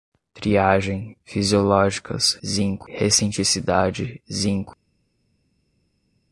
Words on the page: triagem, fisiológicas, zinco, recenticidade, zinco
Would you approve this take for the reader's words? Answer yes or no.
yes